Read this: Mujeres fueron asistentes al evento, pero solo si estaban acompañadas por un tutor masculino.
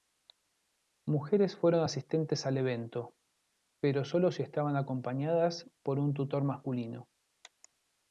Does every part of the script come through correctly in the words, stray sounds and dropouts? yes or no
yes